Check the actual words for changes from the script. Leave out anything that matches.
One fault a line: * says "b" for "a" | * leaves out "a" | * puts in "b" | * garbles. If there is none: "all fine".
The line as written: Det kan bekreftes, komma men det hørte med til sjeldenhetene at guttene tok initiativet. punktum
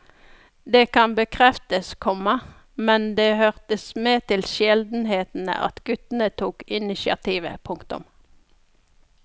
all fine